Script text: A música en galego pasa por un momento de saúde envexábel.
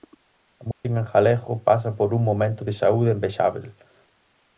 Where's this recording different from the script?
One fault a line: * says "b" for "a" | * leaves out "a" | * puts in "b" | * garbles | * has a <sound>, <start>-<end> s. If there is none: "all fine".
* has a dropout, 0.7-0.8 s